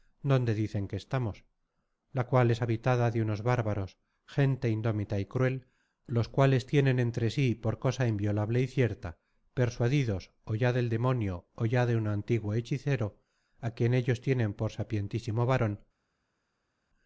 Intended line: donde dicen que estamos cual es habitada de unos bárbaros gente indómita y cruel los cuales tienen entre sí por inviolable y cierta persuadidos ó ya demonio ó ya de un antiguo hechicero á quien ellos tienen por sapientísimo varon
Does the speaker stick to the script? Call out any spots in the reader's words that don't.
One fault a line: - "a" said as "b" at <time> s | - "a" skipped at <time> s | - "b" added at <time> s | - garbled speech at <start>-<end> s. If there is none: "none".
- "la" added at 2.1 s
- "cosa" added at 7.8 s
- "del" added at 10.7 s